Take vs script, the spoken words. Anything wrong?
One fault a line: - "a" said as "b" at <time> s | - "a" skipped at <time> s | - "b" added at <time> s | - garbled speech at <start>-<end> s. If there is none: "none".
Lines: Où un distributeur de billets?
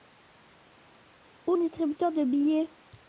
none